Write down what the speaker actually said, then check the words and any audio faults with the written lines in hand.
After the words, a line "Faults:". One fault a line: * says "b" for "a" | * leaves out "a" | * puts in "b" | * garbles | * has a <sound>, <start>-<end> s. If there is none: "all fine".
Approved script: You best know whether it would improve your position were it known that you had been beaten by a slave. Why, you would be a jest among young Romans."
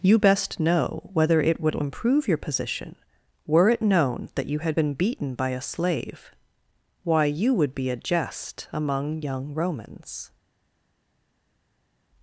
You best know whether it would improve your position were it known that you had been beaten by a slave. Why, you would be a jest among young Romans."
Faults:
all fine